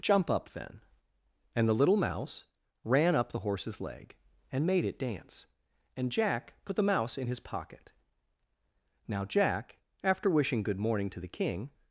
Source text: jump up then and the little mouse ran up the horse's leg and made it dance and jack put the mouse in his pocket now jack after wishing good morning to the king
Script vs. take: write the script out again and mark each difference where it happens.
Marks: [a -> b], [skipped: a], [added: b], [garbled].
jump up then and the little mouse ran up the horse's leg and made it dance and jack put the mouse in his pocket now jack after wishing good morning to the king